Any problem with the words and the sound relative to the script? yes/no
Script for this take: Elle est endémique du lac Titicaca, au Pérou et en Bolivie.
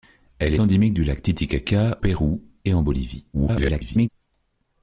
yes